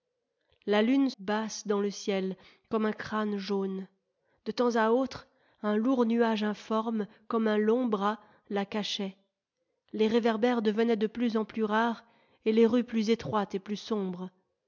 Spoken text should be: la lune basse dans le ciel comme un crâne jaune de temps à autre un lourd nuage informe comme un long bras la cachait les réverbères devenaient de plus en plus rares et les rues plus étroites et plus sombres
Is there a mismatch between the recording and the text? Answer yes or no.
no